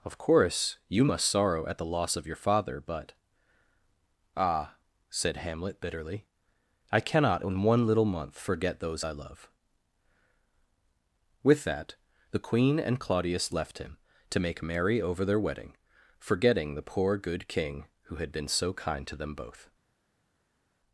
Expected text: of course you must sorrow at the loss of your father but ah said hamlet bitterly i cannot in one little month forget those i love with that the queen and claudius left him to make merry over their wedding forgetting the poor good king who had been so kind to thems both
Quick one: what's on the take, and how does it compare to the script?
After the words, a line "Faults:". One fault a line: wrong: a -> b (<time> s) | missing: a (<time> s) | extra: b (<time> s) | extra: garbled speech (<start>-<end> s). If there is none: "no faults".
of course you must sorrow at the loss of your father but ah said hamlet bitterly i cannot in one little month forget those i love with that the queen and claudius left him to make merry over their wedding forgetting the poor good king who had been so kind to them both
Faults:
wrong: thems -> them (19.1 s)